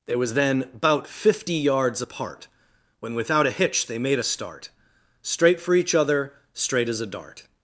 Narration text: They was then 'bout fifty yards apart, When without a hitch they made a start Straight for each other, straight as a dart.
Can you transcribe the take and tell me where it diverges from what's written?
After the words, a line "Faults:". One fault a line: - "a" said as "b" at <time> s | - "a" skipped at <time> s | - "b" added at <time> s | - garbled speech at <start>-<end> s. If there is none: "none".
They was then 'bout fifty yards apart, When without a hitch they made a start Straight for each other, straight as a dart.
Faults:
none